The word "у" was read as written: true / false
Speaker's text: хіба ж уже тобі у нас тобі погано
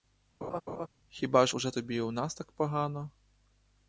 true